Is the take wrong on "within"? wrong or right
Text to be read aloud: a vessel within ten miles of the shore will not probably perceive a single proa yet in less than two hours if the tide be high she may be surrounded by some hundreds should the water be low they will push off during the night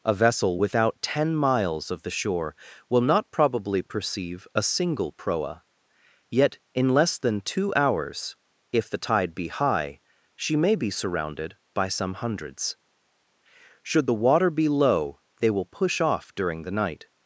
wrong